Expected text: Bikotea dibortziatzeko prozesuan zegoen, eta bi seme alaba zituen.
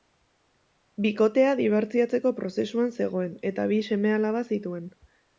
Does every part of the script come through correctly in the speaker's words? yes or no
yes